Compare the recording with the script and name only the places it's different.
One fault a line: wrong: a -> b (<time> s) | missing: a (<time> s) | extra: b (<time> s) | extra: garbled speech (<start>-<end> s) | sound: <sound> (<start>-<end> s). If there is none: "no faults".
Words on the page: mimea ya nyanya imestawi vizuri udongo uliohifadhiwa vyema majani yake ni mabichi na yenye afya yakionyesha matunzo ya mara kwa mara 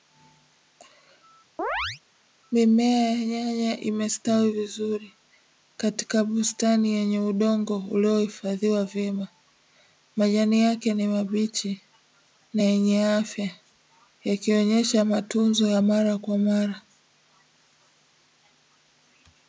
sound: chirp (1.6-2.0 s)
extra: katika bustani yenye (5.8 s)